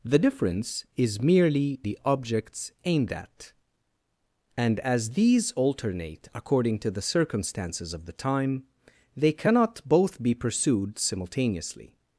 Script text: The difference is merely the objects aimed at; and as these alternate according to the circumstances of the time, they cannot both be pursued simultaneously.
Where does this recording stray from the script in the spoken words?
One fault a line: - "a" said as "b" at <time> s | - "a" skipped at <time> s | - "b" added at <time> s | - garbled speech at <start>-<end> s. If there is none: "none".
none